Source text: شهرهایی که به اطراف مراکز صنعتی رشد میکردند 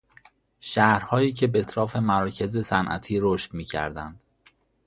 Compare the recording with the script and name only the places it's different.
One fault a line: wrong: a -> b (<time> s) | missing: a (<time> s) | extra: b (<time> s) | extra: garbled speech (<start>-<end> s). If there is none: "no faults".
no faults